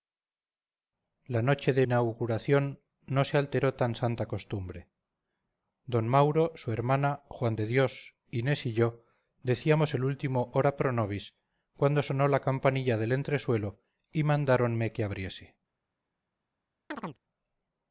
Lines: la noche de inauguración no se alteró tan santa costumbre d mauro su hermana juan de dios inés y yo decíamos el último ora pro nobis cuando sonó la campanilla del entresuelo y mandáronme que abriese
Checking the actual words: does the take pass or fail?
pass